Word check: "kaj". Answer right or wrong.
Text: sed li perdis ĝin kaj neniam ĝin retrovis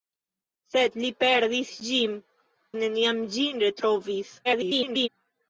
wrong